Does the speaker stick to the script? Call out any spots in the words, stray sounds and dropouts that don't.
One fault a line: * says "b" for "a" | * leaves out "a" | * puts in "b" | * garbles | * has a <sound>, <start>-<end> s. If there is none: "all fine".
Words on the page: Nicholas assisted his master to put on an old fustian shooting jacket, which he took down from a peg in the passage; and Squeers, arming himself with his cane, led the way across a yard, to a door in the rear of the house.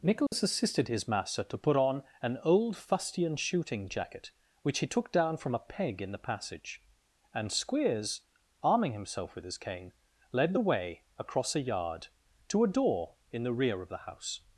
* has a dropout, 0.3-0.3 s